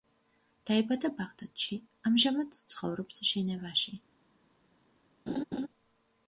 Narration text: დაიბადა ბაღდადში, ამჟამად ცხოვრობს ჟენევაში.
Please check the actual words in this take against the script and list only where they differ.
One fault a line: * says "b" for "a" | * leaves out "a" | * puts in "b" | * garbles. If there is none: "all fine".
all fine